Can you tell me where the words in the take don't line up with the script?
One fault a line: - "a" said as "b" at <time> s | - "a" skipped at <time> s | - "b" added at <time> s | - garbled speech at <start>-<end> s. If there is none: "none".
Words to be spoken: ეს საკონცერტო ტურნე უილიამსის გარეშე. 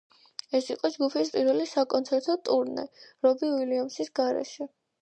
- "იყო ჯგუფის პირველი" added at 0.7 s
- "რობი" added at 3.3 s